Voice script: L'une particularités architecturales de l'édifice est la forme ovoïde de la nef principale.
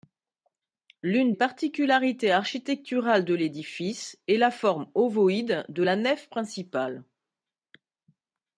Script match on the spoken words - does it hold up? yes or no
yes